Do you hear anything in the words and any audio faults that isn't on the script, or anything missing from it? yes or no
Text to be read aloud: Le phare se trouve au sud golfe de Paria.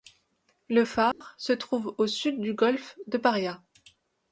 yes